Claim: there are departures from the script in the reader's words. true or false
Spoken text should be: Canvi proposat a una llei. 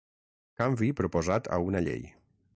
false